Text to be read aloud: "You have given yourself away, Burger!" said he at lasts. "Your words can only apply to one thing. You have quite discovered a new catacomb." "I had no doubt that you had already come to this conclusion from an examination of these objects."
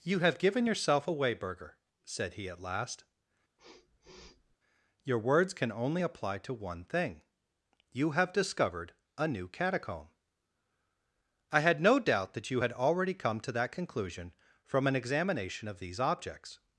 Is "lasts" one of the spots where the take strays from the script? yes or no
yes